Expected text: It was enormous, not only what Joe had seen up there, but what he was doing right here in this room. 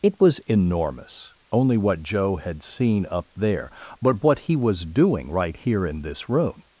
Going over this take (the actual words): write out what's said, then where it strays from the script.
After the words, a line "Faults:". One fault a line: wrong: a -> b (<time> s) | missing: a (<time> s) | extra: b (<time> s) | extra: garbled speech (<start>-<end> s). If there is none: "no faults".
It was enormous, only what Joe had seen up there, but what he was doing right here in this room.
Faults:
missing: not (1.4 s)